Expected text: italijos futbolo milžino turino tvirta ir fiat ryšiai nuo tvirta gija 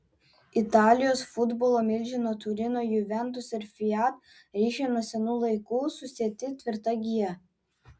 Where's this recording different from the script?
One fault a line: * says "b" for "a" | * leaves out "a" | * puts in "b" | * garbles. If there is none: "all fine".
* says "juventus" for "tvirta"
* puts in "senų laikų susieti"